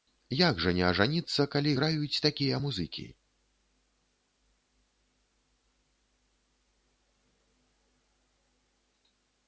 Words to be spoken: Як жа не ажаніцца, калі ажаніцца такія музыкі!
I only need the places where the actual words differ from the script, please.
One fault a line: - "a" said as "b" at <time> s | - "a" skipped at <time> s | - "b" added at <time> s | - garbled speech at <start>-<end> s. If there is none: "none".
- "ажаніцца" said as "граюць" at 1.8 s